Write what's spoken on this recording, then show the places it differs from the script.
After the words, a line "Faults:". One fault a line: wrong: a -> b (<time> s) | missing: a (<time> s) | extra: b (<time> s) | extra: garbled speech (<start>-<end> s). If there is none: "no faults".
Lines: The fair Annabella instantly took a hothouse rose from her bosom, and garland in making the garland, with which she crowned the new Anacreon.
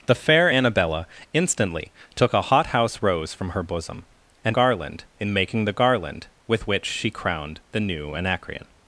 The fair Annabella instantly took a hothouse rose from her bosom, and garland in making the garland, with which she crowned the new Anacreon.
Faults:
no faults